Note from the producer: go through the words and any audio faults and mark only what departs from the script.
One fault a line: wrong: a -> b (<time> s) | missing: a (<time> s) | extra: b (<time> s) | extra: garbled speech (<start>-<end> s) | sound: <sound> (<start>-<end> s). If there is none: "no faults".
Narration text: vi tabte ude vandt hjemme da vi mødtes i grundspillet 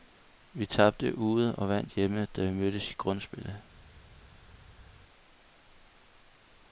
extra: og (1.6 s)